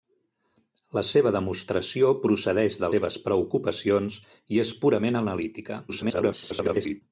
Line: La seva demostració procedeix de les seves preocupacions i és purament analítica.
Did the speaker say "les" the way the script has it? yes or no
no